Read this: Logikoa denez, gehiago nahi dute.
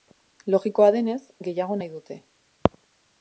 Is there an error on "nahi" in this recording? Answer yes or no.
no